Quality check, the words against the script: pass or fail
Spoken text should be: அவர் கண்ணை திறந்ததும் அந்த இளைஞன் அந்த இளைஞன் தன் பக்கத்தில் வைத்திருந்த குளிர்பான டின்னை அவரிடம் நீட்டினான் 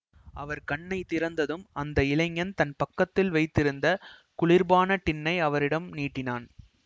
fail